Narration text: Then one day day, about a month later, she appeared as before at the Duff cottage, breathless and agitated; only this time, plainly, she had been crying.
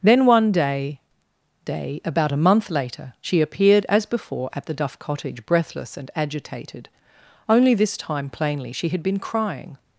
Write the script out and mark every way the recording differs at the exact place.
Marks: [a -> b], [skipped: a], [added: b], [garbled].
Then one day day, about a month later, she appeared as before at the Duff cottage, breathless and agitated; only this time, plainly, she had been crying.